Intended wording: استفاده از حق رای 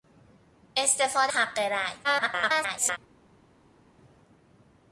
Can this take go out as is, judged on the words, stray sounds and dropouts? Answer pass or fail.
fail